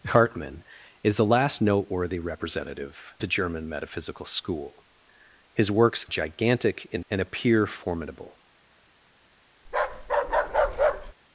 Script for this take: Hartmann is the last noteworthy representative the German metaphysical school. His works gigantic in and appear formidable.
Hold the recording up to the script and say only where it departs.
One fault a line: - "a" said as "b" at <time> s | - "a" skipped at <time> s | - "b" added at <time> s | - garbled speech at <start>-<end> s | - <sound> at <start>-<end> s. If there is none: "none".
- bark at 9.6-11.1 s